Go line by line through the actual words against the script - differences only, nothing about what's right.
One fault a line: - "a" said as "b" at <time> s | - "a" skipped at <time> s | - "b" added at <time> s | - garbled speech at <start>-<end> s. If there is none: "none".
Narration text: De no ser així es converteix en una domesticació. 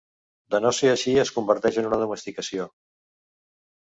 none